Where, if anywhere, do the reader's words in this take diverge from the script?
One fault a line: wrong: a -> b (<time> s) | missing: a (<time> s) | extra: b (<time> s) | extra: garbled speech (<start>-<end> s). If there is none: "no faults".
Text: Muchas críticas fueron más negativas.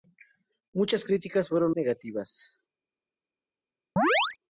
missing: más (1.8 s)